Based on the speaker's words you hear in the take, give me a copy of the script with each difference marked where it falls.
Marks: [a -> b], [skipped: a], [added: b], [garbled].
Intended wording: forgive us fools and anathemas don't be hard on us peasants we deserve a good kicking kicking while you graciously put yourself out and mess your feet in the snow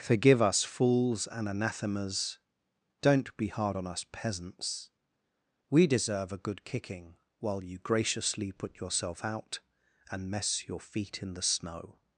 forgive us fools and anathemas don't be hard on us peasants we deserve a good kicking [skipped: kicking] while you graciously put yourself out and mess your feet in the snow